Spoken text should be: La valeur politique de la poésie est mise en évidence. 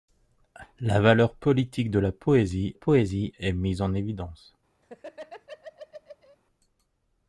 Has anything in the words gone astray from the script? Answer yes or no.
yes